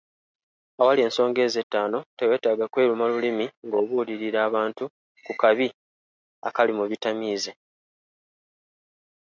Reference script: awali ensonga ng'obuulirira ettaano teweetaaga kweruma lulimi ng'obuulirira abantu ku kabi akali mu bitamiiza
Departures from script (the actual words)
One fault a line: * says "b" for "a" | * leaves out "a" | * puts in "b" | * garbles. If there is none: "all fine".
* says "ezo" for "ng'obuulirira"